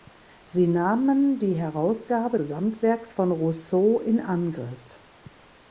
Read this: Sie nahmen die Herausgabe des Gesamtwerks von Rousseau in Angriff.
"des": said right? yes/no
no